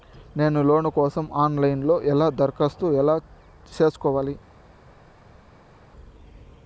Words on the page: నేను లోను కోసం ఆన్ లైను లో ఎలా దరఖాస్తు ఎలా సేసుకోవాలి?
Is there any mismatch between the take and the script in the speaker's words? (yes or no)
no